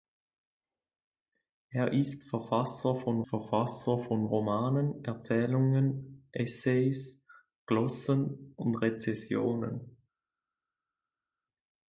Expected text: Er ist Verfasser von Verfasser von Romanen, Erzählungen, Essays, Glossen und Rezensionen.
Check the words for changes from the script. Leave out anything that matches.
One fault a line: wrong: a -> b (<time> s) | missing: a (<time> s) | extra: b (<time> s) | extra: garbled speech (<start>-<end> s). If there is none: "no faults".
no faults